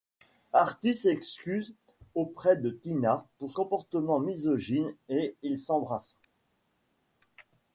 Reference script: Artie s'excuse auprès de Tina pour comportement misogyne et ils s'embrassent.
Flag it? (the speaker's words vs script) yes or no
no